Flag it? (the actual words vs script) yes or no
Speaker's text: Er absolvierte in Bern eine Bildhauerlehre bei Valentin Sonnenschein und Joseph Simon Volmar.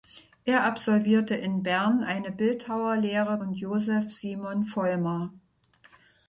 yes